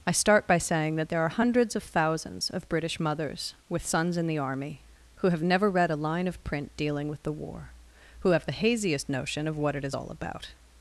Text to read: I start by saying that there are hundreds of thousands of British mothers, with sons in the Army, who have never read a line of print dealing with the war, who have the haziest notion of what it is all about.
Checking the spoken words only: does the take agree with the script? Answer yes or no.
yes